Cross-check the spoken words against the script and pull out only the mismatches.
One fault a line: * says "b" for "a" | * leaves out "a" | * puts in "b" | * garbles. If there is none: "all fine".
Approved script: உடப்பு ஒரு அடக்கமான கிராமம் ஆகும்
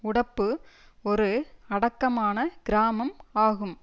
all fine